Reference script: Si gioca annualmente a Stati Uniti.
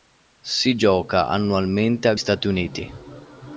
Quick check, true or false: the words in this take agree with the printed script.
true